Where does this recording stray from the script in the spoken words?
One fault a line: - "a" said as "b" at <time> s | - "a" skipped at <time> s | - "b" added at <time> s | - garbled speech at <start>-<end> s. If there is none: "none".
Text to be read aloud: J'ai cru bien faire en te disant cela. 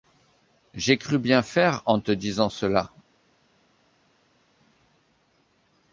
none